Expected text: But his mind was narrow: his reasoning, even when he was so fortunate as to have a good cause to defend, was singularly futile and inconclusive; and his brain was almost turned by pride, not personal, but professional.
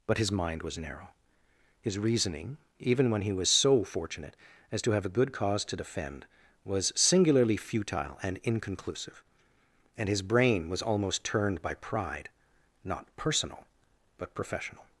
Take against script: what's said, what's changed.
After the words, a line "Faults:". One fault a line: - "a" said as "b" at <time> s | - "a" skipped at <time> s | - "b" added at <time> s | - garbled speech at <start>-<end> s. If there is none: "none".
But his mind was narrow: his reasoning, even when he was so fortunate as to have a good cause to defend, was singularly futile and inconclusive; and his brain was almost turned by pride, not personal, but professional.
Faults:
none